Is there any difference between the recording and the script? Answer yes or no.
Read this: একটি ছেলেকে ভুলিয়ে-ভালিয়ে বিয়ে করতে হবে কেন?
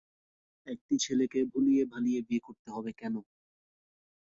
no